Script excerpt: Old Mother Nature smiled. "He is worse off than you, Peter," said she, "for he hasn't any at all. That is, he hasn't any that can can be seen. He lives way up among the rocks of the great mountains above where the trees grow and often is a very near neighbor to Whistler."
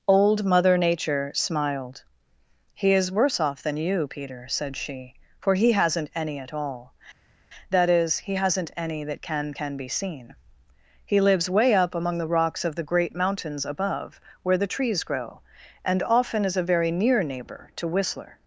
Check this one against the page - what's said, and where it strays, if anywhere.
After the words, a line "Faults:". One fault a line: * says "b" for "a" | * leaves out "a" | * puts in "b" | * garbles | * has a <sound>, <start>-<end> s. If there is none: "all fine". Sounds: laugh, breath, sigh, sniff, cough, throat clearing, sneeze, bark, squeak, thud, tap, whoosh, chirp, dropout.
Old Mother Nature smiled. "He is worse off than you, Peter," said she, "for he hasn't any at all. That is, he hasn't any that can can be seen. He lives way up among the rocks of the great mountains above where the trees grow and often is a very near neighbor to Whistler."
Faults:
all fine